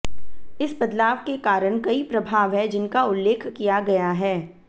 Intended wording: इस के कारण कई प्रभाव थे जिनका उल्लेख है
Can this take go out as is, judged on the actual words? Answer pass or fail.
fail